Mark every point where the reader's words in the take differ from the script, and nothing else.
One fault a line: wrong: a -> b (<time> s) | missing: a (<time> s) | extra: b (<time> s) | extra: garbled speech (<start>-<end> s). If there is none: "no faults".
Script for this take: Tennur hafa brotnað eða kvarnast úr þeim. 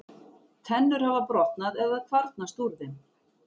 no faults